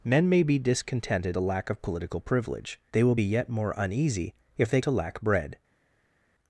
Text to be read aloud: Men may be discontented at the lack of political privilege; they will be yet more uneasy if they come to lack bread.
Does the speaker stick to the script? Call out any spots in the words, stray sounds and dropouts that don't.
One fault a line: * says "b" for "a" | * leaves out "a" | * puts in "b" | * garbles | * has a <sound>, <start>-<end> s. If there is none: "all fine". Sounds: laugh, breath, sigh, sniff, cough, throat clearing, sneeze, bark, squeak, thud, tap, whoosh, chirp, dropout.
* leaves out "at"
* leaves out "come"